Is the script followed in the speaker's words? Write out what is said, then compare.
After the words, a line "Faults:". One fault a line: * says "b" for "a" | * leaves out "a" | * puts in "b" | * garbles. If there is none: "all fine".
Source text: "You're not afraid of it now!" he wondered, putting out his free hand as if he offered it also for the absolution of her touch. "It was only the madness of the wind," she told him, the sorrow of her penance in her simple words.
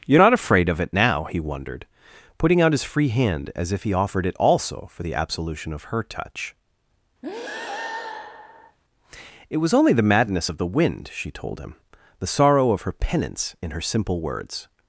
"You're not afraid of it now!" he wondered, putting out his free hand as if he offered it also for the absolution of her touch. "It was only the madness of the wind," she told him, the sorrow of her penance in her simple words.
Faults:
all fine